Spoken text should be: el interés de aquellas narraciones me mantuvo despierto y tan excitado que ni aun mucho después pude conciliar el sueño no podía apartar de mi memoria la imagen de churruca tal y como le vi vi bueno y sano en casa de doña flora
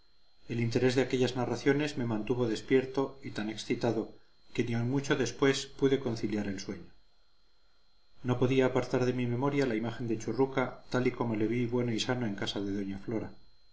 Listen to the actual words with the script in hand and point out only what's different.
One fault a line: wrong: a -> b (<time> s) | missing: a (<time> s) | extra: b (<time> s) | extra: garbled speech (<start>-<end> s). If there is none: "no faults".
missing: vi (11.7 s)